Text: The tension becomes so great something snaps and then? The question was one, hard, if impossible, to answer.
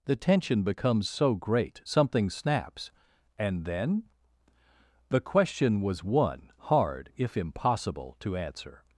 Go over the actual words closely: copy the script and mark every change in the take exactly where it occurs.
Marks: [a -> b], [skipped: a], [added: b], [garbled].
The tension becomes so great something snaps and then? The question was one, hard, if impossible, to answer.